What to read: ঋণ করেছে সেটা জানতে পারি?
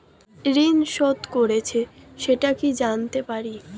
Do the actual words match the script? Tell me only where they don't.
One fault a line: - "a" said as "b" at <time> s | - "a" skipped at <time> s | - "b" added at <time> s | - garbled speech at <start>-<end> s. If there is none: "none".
- "শোধ" added at 0.9 s
- "কি" added at 2.6 s